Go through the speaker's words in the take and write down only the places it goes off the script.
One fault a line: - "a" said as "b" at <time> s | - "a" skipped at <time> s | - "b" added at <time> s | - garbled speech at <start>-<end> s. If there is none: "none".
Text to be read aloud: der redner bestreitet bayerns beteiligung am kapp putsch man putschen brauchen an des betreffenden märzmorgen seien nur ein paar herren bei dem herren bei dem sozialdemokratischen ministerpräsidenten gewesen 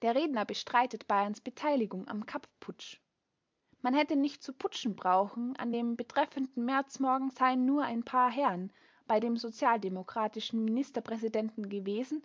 - "hätte nicht zu" added at 4.0 s
- "des" said as "dem" at 5.7 s
- "herren bei dem" skipped at 9.4 s